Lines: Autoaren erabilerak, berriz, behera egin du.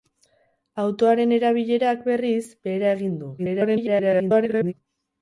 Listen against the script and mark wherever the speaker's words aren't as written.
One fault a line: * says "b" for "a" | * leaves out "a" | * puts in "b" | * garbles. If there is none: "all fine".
* garbles